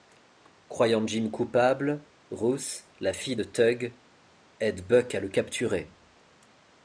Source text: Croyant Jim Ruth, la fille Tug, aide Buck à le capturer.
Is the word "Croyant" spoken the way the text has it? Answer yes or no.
yes